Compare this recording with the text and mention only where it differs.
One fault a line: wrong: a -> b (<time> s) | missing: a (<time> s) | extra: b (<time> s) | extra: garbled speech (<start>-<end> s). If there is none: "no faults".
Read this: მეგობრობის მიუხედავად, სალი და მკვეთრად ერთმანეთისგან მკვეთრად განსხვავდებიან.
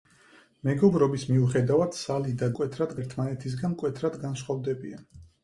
no faults